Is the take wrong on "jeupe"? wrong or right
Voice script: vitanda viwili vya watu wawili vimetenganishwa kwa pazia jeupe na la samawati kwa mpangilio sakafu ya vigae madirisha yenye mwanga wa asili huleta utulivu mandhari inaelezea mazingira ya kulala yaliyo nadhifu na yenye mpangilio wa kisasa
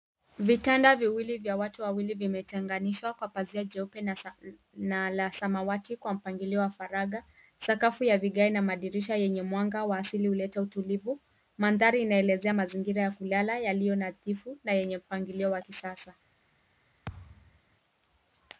right